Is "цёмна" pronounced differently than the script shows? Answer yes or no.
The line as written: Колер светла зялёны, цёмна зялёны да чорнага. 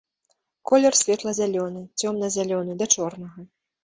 no